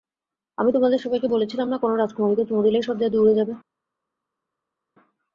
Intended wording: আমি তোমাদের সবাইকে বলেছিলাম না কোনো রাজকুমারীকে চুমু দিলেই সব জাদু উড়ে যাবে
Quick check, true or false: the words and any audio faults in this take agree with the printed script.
true